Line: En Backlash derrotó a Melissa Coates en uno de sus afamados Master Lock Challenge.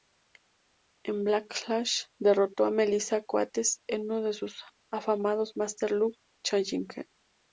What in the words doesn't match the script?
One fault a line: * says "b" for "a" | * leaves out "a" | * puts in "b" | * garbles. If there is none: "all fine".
all fine